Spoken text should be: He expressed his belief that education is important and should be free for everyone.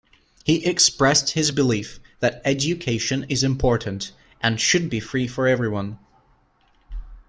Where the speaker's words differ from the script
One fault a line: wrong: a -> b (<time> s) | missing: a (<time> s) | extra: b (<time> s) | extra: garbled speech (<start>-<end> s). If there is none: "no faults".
no faults